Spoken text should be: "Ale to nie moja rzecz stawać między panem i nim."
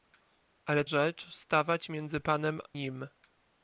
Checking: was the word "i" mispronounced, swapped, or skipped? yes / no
yes